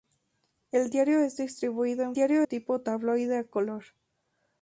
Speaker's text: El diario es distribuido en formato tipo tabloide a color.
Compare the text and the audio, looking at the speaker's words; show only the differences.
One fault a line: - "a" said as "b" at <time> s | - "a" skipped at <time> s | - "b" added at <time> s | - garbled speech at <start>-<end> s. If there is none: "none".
- "formato" said as "diario" at 2.1 s